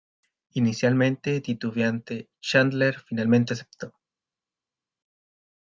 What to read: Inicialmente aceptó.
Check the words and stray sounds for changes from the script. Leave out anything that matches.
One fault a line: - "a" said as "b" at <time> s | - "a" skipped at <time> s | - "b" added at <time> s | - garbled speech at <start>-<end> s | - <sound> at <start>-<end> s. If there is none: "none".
- "titubeante Chandler finalmente" added at 1.4 s